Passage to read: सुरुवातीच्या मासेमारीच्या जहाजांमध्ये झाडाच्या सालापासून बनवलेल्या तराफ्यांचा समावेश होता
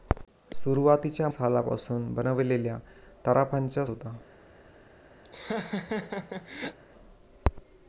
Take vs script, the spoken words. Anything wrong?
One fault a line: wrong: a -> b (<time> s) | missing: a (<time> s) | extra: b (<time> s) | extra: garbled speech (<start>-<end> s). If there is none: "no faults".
missing: मासेमारीच्या जहाजांमध्ये झाडाच्या (1.3 s)
missing: समावेश (3.8 s)